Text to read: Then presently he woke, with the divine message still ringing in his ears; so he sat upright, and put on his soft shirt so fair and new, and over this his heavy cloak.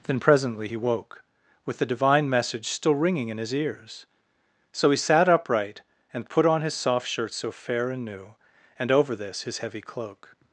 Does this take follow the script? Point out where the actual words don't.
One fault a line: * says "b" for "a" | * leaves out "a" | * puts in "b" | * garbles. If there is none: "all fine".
all fine